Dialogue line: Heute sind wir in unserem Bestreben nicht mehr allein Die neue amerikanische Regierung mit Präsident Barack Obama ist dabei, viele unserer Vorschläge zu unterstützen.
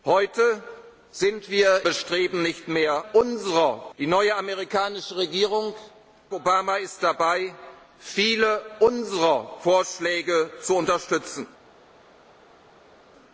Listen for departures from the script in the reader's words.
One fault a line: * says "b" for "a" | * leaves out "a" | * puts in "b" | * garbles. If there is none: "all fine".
* leaves out "in unserem"
* says "unserer" for "allein"
* leaves out "mit Präsident Barack"